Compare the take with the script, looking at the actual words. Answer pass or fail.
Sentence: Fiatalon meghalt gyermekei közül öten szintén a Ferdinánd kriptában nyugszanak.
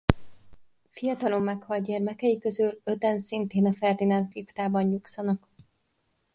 pass